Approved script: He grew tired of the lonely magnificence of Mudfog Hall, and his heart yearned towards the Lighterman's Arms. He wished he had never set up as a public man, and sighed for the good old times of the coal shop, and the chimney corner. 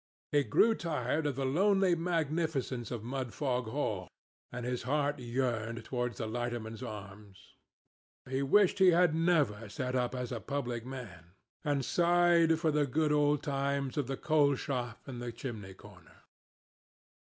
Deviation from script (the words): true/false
false